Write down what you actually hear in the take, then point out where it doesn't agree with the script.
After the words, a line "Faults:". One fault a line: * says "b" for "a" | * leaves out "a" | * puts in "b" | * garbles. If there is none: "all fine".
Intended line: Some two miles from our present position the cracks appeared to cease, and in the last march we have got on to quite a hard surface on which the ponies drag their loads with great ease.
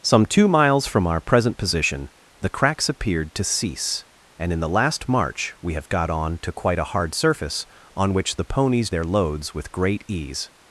Some two miles from our present position the cracks appeared to cease, and in the last march we have got on to quite a hard surface on which the ponies their loads with great ease.
Faults:
* leaves out "drag"